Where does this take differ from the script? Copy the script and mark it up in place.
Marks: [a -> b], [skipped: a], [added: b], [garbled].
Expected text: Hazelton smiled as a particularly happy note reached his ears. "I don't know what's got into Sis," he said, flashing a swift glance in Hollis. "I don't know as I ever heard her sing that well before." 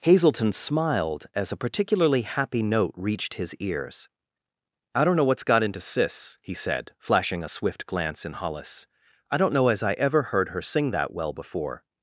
Hazelton smiled as a particularly happy note reached his ears. "I don't know what's got into Sis," he said, flashing a swift glance in Hollis. "I don't know as I ever heard her sing that well before."